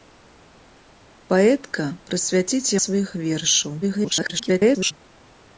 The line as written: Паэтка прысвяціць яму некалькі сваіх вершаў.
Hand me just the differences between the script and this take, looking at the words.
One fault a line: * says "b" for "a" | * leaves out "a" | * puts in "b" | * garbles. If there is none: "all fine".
* leaves out "яму некалькі"
* garbles